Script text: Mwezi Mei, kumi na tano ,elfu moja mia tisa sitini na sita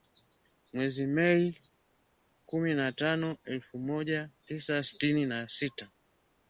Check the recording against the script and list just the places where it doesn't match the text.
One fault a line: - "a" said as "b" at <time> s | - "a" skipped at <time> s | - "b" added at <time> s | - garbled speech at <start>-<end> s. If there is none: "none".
- "mia" skipped at 4.3 s